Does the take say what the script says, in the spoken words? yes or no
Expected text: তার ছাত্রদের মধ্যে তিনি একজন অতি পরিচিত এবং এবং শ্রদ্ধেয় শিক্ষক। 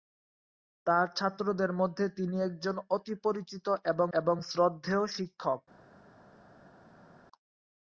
yes